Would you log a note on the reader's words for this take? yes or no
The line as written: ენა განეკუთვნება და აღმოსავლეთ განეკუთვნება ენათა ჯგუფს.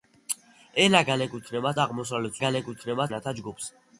no